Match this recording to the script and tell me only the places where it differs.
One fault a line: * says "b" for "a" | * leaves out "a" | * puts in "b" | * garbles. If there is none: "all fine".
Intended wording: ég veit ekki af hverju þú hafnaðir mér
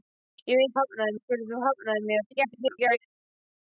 * says "hafnaðir" for "ekki"
* garbles